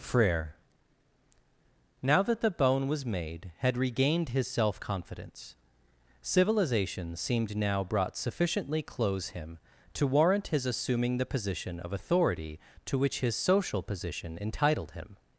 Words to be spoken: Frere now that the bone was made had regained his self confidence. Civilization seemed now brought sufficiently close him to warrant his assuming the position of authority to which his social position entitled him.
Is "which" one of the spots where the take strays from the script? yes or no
no